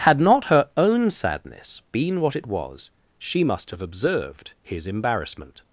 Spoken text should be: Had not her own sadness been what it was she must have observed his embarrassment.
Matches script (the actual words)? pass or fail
pass